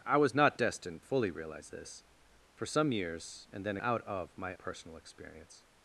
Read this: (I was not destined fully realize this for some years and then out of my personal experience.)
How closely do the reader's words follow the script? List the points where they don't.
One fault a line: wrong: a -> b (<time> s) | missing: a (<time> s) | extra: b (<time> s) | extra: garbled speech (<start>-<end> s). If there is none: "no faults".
no faults